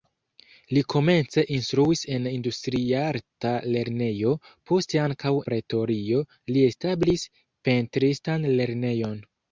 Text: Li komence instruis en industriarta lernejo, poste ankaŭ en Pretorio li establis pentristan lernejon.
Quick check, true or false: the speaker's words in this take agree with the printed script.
false